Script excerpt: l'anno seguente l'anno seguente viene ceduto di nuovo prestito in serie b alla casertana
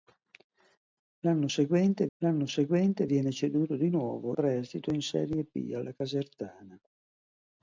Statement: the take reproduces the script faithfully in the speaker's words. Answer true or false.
true